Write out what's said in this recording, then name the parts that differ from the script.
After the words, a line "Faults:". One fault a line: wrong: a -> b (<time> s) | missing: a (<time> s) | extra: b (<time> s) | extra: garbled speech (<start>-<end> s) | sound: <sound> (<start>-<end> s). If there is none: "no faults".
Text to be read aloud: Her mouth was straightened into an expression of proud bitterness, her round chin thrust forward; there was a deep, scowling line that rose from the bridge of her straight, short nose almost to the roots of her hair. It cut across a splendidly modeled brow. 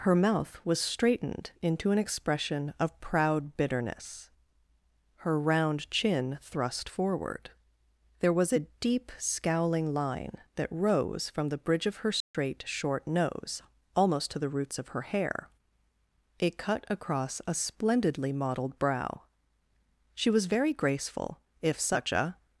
Her mouth was straightened into an expression of proud bitterness, her round chin thrust forward; there was a deep, scowling line that rose from the bridge of her straight, short nose almost to the roots of her hair. It cut across a splendidly modeled brow. She was very graceful, if such a
Faults:
sound: dropout (12.2-12.3 s)
extra: She was very graceful if such a (20.1 s)